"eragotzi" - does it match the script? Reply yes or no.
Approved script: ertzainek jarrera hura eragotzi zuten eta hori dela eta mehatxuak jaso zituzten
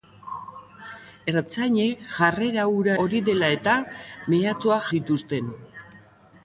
no